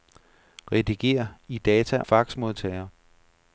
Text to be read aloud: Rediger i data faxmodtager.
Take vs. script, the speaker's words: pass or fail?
pass